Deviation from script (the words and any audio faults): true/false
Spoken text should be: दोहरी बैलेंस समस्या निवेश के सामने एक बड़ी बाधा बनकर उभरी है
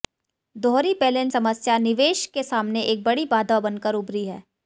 false